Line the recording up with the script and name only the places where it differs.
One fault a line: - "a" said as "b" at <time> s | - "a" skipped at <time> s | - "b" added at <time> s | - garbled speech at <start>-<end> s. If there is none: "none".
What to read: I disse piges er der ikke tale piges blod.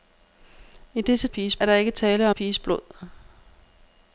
none